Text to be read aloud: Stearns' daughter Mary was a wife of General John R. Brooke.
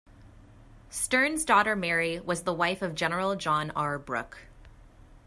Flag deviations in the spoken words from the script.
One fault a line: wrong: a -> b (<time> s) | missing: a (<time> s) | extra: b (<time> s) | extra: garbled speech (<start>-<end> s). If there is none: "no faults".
wrong: a -> the (2.4 s)